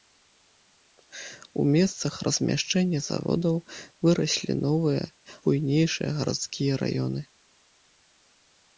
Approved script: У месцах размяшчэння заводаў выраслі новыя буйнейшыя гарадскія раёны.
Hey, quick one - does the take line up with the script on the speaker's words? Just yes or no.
yes